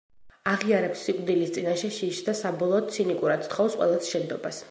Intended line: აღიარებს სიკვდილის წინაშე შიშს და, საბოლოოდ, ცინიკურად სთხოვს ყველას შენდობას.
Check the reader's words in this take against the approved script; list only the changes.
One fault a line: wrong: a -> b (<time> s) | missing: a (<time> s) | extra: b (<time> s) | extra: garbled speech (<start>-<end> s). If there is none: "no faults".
no faults